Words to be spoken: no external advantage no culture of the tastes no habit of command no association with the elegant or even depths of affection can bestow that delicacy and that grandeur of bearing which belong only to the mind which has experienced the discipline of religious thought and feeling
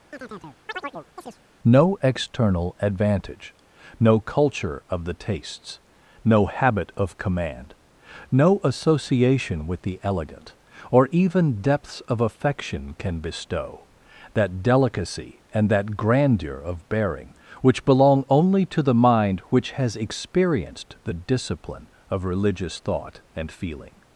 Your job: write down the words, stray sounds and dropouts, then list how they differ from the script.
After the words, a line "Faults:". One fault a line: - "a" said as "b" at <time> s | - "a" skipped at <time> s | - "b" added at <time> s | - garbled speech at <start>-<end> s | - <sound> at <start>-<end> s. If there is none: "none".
no external advantage no culture of the tastes no habit of command no association with the elegant or even depths of affection can bestow that delicacy and that grandeur of bearing which belong only to the mind which has experienced the discipline of religious thought and feeling
Faults:
- chirp at 0.1-1.4 s